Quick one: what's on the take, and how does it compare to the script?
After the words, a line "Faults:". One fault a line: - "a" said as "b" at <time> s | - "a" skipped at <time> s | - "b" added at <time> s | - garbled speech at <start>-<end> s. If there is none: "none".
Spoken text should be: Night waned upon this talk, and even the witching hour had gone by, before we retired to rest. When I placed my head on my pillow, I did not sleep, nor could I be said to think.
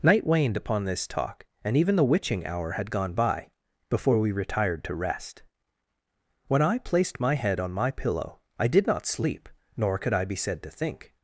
Night waned upon this talk, and even the witching hour had gone by, before we retired to rest. When I placed my head on my pillow, I did not sleep, nor could I be said to think.
Faults:
none